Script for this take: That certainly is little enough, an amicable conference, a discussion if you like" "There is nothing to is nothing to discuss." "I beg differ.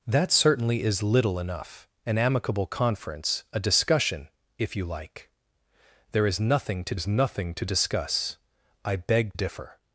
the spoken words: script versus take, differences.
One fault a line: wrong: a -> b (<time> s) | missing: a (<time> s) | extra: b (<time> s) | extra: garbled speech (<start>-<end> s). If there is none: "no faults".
no faults